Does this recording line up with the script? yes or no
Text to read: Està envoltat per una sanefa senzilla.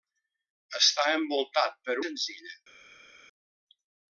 no